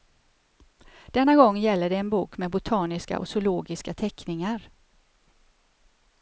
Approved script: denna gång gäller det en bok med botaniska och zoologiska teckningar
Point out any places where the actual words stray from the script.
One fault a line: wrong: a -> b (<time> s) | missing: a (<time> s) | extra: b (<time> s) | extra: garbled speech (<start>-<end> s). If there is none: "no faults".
no faults